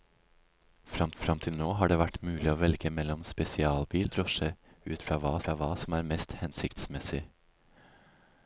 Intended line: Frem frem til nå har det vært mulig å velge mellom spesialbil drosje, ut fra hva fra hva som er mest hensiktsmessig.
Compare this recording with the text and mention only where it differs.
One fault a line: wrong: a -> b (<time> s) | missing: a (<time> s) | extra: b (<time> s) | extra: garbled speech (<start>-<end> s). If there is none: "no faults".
no faults